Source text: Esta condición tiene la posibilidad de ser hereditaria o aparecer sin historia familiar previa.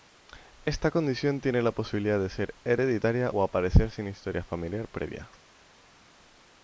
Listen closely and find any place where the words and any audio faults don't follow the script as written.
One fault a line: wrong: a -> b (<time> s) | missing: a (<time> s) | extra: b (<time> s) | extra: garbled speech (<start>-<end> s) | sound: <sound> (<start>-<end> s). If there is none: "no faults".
no faults